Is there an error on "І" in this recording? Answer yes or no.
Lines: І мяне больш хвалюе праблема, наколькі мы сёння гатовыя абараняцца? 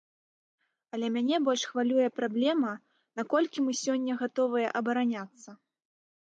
yes